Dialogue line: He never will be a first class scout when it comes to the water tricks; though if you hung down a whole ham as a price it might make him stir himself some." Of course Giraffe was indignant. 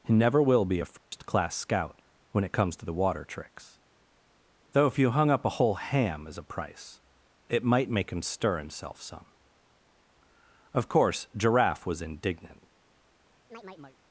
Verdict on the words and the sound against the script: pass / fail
fail